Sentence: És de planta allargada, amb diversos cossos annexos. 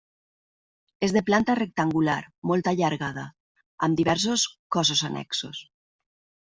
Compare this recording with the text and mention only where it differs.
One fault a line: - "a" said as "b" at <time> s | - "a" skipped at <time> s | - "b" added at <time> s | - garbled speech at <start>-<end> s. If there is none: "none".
- "rectangular molt" added at 1.6 s